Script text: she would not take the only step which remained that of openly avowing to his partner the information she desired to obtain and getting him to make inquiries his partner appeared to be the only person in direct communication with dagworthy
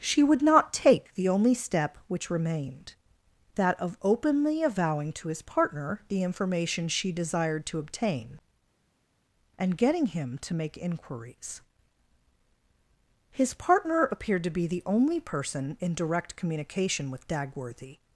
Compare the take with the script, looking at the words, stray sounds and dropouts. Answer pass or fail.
pass